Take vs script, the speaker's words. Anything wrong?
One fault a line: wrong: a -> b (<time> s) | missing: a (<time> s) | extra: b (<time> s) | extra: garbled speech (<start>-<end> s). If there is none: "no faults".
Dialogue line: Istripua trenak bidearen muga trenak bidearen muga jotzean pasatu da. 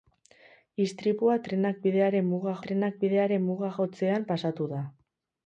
no faults